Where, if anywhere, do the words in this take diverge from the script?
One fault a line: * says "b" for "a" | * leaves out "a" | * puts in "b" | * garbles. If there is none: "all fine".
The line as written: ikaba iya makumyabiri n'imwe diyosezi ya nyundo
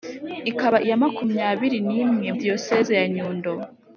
all fine